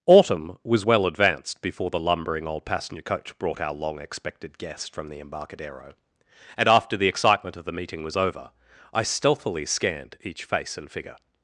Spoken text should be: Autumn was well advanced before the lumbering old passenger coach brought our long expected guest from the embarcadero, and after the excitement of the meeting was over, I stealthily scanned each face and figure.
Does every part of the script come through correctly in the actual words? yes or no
yes